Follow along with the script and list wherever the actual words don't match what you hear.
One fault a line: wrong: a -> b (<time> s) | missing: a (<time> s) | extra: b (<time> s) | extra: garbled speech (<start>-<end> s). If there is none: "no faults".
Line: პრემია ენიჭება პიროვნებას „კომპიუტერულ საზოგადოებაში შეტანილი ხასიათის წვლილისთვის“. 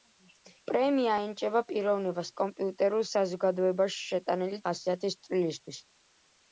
no faults